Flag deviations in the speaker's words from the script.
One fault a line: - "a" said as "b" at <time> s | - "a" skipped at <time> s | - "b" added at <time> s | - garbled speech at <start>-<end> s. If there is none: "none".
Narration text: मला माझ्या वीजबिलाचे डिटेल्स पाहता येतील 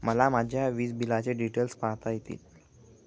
none